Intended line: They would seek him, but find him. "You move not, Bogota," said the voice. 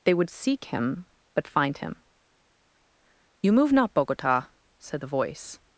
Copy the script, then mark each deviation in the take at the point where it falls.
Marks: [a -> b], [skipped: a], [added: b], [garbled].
They would seek him, but find him. "You move not, Bogota," said the voice.